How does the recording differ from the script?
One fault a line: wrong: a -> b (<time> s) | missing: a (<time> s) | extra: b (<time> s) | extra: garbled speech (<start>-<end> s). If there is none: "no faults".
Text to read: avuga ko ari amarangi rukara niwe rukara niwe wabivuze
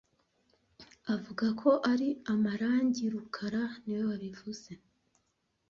missing: rukara niwe (4.0 s)